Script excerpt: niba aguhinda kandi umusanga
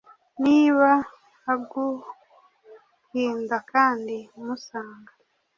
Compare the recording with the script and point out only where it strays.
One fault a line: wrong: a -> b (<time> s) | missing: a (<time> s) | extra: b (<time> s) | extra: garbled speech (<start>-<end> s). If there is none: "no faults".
no faults